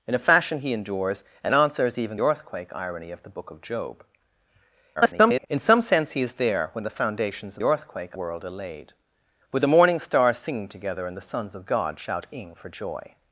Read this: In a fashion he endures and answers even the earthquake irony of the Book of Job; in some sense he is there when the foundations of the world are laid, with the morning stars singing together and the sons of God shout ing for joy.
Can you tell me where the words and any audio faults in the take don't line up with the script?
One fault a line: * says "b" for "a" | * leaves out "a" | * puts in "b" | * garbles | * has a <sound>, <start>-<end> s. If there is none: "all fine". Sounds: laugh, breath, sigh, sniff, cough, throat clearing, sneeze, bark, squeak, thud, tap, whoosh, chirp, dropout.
* leaves out "the"
* garbles
* says "earthquake" for "the"